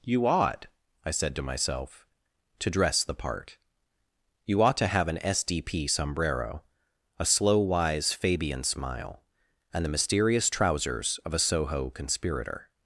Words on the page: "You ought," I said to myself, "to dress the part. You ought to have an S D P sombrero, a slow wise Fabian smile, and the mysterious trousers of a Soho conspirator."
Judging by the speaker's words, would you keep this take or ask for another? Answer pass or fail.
pass